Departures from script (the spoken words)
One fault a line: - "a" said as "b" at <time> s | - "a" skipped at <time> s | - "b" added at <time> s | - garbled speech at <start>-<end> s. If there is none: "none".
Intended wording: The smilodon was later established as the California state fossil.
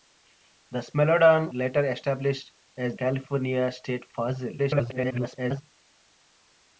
- "was" skipped at 1.5 s
- "the" skipped at 2.9 s
- garbled speech at 4.6-5.6 s